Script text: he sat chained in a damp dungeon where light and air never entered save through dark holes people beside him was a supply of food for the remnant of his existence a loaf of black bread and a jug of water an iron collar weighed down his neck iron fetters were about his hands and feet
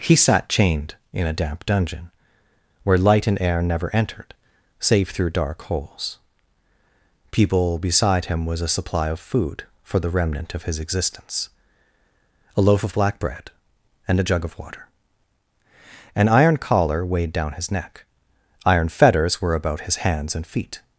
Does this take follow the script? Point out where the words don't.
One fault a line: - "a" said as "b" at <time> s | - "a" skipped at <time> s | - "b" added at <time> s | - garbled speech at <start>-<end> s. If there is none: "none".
none